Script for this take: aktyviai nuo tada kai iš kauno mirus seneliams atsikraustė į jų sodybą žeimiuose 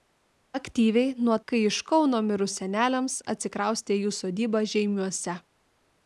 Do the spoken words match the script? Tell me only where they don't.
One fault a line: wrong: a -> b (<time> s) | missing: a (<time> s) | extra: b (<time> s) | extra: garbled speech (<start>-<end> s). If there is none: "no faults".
missing: tada (1.4 s)